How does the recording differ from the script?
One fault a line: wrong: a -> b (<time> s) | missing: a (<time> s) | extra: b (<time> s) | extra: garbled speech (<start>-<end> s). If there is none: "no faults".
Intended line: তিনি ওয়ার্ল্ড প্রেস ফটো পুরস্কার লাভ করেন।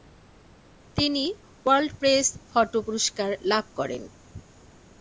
no faults